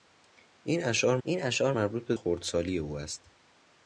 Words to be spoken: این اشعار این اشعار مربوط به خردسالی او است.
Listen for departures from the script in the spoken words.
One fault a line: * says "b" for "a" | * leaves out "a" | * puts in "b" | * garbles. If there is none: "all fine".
all fine